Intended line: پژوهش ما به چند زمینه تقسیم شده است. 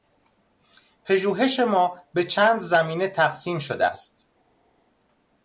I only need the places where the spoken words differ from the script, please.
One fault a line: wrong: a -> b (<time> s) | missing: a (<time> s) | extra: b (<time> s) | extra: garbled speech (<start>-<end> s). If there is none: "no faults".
no faults